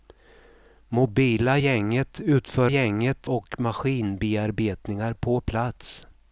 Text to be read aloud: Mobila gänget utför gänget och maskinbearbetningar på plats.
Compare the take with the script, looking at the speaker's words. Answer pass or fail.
pass